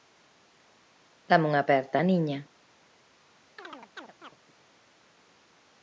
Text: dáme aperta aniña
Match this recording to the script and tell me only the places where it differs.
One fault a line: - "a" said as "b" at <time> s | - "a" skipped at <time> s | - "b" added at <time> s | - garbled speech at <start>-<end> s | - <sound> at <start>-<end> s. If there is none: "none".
- "unha" added at 1.5 s
- chirp at 3.6-4.4 s